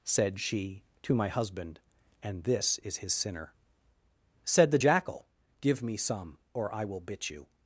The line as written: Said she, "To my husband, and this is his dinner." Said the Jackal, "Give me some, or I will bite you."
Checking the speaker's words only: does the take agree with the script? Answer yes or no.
no